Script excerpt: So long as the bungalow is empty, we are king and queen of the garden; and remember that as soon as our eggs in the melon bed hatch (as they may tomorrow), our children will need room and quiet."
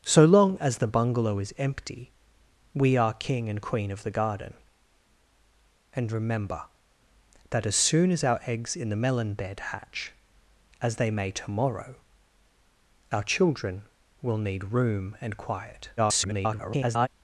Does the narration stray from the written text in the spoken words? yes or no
yes